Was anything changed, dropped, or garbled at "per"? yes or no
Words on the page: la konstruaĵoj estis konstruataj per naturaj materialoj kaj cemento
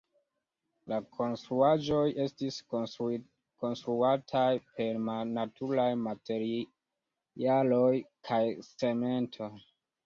no